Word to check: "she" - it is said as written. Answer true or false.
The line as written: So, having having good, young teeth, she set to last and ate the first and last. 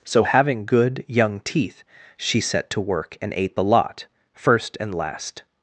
true